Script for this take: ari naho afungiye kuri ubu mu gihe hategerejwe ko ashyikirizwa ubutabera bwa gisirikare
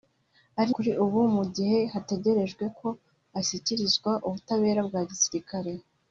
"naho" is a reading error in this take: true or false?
true